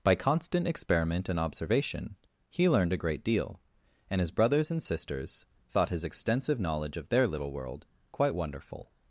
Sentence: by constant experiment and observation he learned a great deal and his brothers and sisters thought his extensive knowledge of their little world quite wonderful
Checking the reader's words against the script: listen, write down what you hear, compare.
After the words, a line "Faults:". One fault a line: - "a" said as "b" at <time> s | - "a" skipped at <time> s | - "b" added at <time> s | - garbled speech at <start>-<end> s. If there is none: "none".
by constant experiment and observation he learned a great deal and his brothers and sisters thought his extensive knowledge of their little world quite wonderful
Faults:
none